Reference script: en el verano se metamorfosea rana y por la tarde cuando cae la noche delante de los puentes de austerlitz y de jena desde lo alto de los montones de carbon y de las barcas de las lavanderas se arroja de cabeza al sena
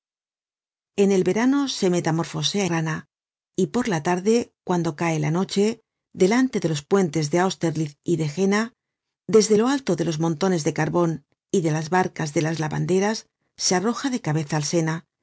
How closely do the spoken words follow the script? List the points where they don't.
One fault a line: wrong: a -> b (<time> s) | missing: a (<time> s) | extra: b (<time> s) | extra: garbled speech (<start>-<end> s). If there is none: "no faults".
no faults